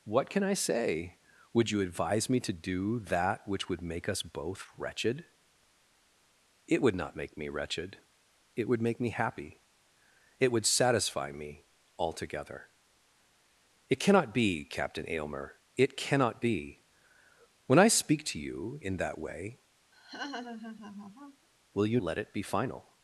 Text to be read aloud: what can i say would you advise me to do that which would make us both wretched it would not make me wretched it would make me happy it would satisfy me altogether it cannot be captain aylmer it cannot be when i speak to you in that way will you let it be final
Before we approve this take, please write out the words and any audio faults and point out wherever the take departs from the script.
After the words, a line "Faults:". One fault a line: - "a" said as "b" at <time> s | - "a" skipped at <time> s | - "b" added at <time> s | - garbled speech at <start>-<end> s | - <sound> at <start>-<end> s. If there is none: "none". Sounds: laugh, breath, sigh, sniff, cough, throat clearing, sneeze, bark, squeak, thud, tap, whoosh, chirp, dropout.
what can i say would you advise me to do that which would make us both wretched it would not make me wretched it would make me happy it would satisfy me altogether it cannot be captain aylmer it cannot be when i speak to you in that way will you let it be final
Faults:
- laugh at 19.9-21.5 s